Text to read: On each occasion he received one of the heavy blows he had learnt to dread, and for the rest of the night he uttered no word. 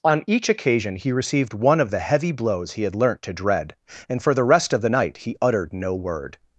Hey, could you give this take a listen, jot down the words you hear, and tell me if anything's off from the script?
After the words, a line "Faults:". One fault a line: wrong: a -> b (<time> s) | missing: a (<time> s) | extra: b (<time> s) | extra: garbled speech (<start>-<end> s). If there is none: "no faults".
On each occasion he received one of the heavy blows he had learnt to dread, and for the rest of the night he uttered no word.
Faults:
no faults